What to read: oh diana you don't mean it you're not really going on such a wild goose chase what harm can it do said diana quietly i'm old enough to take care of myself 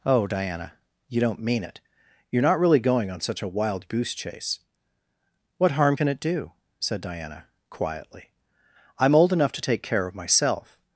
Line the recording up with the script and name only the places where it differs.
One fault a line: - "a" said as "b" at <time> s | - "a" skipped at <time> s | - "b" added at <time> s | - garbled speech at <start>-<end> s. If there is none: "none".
none